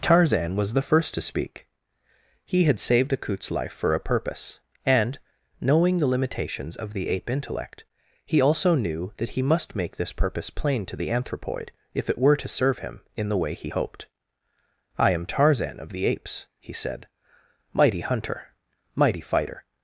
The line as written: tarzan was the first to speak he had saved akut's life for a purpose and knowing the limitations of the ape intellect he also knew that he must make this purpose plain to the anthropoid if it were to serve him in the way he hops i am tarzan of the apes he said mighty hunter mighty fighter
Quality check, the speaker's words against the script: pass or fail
fail